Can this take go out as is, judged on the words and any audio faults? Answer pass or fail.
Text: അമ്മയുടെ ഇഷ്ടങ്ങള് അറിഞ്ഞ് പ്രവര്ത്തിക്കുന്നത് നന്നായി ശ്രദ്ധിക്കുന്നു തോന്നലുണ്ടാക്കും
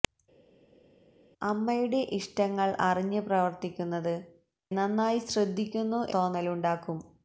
pass